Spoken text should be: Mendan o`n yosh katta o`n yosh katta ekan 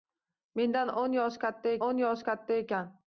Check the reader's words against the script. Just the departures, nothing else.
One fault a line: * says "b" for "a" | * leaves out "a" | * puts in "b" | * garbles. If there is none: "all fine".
all fine